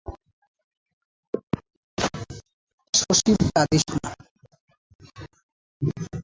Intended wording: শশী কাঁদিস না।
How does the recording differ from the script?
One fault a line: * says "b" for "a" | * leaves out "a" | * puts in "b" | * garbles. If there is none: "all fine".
all fine